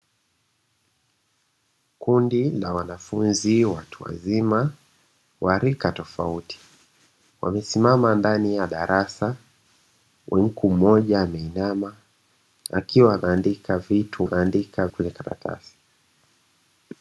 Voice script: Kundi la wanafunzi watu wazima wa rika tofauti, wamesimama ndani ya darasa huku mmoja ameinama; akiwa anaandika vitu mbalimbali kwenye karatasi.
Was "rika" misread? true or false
false